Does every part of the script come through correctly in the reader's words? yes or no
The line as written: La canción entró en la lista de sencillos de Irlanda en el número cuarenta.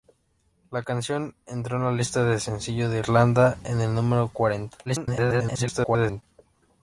no